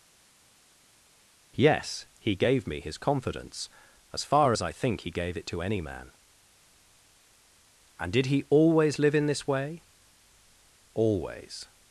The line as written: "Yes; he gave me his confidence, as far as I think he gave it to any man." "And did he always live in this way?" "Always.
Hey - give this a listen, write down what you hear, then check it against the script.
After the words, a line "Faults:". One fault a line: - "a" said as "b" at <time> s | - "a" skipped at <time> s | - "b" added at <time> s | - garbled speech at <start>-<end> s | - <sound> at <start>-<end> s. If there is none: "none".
"Yes; he gave me his confidence, as far as I think he gave it to any man." "And did he always live in this way?" "Always.
Faults:
none